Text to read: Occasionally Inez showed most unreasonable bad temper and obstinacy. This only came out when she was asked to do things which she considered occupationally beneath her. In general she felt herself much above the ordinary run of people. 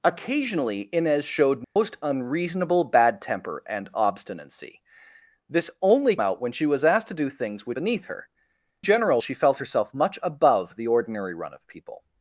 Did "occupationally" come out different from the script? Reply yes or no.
yes